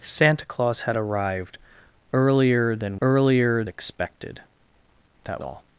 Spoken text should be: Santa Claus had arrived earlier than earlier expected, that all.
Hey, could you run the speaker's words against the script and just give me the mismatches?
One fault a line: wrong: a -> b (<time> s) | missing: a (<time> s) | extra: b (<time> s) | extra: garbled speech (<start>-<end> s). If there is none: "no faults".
no faults